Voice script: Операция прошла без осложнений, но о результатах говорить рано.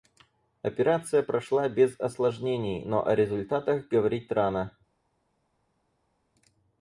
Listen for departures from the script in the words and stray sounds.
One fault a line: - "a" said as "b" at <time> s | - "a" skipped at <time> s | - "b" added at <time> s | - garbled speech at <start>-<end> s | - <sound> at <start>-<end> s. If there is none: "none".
none